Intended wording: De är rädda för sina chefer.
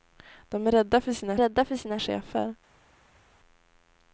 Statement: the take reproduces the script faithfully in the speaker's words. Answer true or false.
false